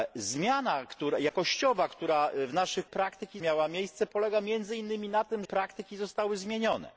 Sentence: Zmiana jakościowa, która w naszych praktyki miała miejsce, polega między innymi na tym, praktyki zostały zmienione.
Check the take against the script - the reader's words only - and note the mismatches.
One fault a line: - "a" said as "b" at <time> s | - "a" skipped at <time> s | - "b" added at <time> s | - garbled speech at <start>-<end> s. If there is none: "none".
none